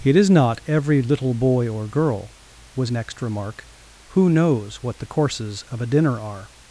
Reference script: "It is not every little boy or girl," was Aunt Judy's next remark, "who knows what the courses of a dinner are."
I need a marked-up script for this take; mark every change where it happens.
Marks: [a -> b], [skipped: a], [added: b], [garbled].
"It is not every little boy or girl," was [skipped: Aunt Judy's] next remark, "who knows what the courses of a dinner are."